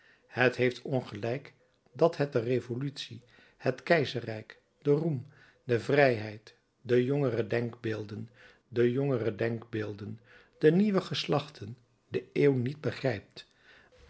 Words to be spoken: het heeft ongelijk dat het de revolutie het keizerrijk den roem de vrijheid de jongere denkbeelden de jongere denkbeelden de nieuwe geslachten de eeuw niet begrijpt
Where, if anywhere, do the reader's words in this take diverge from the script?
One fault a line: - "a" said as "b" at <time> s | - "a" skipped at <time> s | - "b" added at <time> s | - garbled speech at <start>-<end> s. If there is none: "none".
none